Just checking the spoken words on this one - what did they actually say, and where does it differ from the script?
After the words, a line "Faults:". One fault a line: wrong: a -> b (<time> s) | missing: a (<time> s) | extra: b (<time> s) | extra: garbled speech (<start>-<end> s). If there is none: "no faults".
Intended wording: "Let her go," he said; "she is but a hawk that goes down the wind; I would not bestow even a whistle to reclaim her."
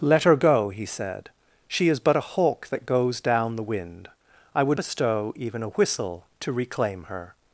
"Let her go," he said; "she is but a hawk that goes down the wind; I would bestow even a whistle to reclaim her."
Faults:
missing: not (4.8 s)